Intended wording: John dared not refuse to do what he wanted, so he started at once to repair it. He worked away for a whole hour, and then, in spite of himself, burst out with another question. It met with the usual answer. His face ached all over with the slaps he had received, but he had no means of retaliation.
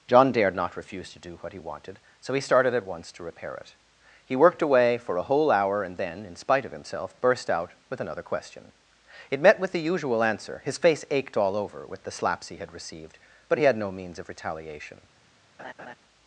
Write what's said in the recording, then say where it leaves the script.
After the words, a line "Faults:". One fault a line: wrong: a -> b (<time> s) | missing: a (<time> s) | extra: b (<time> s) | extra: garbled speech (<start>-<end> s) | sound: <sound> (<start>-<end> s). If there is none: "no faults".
John dared not refuse to do what he wanted, so he started at once to repair it. He worked away for a whole hour, and then, in spite of himself, burst out with another question. It met with the usual answer. His face ached all over with the slaps he had received, but he had no means of retaliation.
Faults:
sound: laugh (15.6-15.9 s)